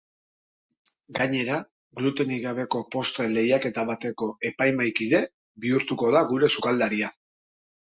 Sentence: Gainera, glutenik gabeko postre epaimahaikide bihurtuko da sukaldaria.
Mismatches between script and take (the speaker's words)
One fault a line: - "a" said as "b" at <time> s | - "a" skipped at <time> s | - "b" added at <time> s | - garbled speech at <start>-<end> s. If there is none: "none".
- "lehiaketa bateko" added at 3.4 s
- "gure" added at 6.4 s